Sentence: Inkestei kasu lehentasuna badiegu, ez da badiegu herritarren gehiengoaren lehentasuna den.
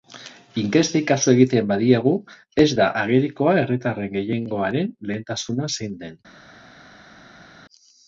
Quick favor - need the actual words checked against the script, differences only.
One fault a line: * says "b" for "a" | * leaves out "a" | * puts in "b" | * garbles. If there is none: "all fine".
* says "egiten" for "lehentasuna"
* says "agerikoa" for "badiegu"
* puts in "zein"